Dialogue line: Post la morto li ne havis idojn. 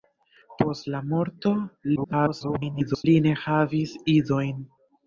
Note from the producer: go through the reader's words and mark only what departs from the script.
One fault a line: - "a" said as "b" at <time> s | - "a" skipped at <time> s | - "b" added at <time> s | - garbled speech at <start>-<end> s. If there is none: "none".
- garbled speech at 2.0-3.0 s